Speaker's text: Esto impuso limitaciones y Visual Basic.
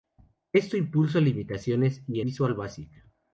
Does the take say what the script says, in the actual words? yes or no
yes